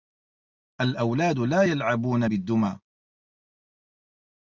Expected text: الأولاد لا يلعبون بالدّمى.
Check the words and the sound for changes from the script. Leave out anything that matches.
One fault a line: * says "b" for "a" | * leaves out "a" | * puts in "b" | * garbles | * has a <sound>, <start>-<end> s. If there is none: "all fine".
all fine